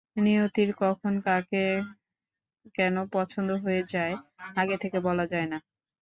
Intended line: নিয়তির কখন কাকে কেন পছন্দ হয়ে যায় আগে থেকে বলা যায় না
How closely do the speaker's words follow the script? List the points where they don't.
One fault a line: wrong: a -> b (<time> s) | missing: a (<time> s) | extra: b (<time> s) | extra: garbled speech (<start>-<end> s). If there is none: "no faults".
no faults